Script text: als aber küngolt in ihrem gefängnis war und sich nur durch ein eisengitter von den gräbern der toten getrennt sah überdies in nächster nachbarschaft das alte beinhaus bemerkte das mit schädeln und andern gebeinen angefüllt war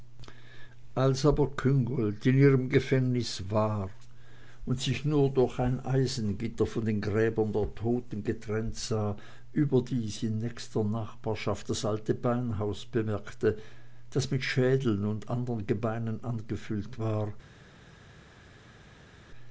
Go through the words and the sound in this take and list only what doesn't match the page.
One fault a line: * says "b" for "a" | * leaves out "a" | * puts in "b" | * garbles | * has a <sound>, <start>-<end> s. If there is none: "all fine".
all fine